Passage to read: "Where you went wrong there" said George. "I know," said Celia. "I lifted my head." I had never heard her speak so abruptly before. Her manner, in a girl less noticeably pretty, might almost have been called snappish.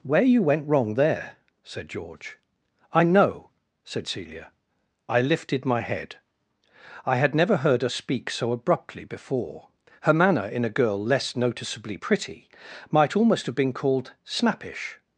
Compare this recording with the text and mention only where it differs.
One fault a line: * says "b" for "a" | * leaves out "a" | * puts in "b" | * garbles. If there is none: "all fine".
all fine